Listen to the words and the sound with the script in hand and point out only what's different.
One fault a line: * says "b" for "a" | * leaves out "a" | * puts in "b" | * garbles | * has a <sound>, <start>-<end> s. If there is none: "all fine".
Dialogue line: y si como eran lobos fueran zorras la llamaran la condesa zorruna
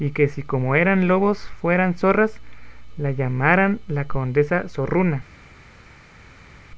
* puts in "que"